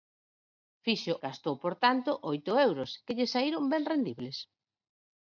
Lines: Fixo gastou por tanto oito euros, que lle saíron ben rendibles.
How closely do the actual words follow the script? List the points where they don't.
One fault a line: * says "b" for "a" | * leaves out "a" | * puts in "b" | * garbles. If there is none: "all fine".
all fine